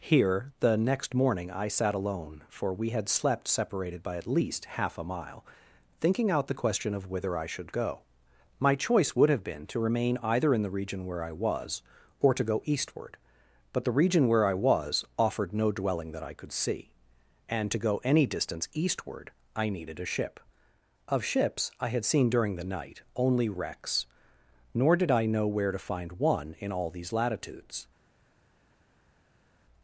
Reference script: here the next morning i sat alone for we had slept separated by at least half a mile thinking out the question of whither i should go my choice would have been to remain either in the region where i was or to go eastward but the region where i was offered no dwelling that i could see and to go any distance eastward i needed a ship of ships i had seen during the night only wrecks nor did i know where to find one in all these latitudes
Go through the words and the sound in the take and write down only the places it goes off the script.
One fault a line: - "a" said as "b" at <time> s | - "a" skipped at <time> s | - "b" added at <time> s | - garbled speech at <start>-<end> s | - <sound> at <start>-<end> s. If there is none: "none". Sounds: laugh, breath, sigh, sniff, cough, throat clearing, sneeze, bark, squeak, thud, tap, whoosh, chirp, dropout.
none